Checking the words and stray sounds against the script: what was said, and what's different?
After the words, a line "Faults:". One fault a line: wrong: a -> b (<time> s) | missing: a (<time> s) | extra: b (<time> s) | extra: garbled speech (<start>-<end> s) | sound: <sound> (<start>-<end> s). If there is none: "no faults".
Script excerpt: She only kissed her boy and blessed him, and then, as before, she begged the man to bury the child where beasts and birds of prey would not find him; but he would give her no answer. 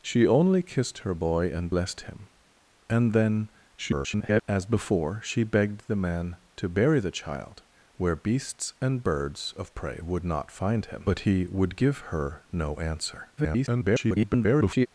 She only kissed her boy and blessed him, and then, [garbled] as before, she begged the man to bury the child where beasts and birds of prey would not find him; but he would give her no answer. [garbled]
Faults:
extra: garbled speech (3.8-4.4 s)
extra: garbled speech (13.4-14.9 s)